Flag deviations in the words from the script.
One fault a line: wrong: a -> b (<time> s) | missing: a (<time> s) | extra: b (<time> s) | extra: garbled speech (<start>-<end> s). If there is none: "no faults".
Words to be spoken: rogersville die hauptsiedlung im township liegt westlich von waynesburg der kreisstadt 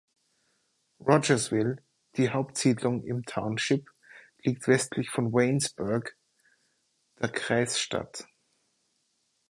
no faults